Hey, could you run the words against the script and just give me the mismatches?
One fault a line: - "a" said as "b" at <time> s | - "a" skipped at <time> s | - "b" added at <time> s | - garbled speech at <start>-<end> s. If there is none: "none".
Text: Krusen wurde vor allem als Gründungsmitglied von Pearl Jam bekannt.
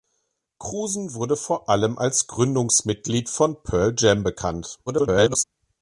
- garbled speech at 4.9-5.4 s